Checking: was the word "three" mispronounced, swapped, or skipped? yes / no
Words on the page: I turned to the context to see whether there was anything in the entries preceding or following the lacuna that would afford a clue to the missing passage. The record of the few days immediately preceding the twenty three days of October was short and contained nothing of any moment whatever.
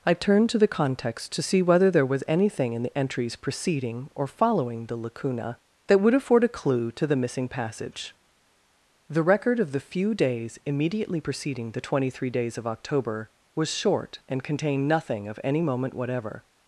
no